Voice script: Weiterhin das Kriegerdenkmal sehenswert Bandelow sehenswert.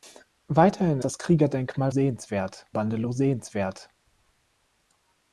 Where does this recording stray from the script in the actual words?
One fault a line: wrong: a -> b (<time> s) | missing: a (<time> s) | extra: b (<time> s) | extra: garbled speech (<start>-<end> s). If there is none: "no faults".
no faults